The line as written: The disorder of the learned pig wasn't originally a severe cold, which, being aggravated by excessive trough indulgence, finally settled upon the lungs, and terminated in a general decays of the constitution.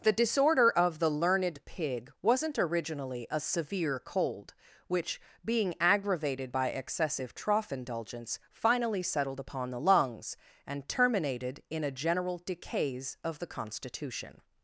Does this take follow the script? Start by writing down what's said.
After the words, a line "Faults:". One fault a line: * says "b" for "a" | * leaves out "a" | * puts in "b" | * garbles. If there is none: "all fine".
The disorder of the learned pig wasn't originally a severe cold, which, being aggravated by excessive trough indulgence, finally settled upon the lungs, and terminated in a general decays of the constitution.
Faults:
all fine